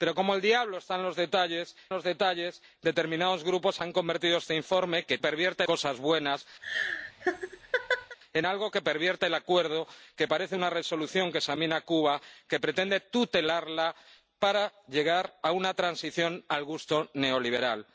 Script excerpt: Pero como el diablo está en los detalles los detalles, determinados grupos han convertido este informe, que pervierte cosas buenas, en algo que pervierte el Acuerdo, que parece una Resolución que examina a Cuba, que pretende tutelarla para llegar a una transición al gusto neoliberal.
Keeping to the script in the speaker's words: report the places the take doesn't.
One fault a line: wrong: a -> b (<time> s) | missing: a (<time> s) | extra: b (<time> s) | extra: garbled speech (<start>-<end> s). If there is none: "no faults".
no faults